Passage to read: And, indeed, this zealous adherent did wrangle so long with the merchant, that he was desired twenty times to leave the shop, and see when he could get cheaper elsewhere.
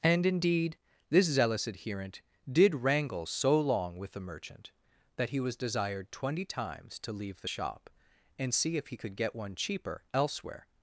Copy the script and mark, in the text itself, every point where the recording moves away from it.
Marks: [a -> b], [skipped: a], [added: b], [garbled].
And, indeed, this zealous adherent did wrangle so long with the merchant, that he was desired twenty times to leave the shop, and see [when -> if] he could get [added: one] cheaper elsewhere.